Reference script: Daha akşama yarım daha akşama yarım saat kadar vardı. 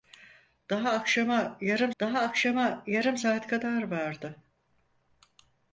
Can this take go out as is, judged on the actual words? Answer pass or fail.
pass